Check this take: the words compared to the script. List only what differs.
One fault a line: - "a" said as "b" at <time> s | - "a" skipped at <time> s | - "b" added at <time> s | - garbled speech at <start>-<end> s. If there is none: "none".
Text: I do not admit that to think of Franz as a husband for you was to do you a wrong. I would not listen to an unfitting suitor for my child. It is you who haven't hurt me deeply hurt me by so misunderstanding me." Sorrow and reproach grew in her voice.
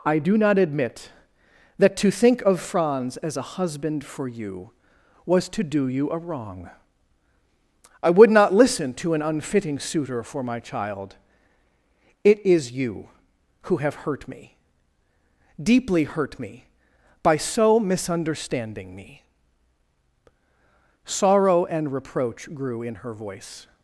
- "haven't" said as "have" at 13.8 s